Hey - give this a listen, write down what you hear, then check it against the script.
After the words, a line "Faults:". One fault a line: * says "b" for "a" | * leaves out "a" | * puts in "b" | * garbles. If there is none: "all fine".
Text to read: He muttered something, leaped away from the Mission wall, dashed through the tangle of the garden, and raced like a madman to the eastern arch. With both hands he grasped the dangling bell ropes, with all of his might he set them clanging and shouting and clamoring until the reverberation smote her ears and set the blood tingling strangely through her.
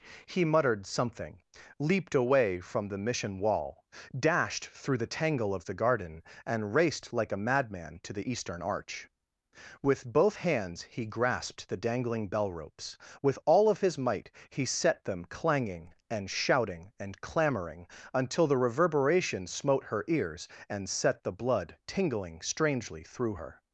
He muttered something, leaped away from the Mission wall, dashed through the tangle of the garden, and raced like a madman to the eastern arch. With both hands he grasped the dangling bell ropes, with all of his might he set them clanging and shouting and clamoring until the reverberation smote her ears and set the blood tingling strangely through her.
Faults:
all fine